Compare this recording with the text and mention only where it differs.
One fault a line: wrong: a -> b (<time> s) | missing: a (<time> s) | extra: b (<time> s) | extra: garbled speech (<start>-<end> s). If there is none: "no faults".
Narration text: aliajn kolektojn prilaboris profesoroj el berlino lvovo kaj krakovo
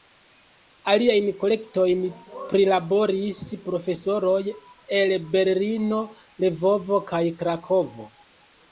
no faults